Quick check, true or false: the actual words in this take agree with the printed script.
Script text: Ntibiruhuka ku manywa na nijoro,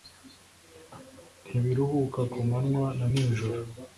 true